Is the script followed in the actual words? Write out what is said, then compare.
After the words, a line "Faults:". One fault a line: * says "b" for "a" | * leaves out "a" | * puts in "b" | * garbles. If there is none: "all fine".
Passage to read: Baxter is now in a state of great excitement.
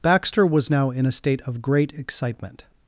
Baxter was now in a state of great excitement.
Faults:
* says "was" for "is"